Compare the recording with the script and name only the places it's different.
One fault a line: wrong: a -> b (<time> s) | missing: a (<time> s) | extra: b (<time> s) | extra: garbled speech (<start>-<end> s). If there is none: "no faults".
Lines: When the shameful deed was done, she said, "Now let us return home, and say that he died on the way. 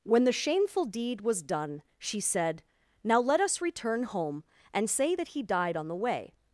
no faults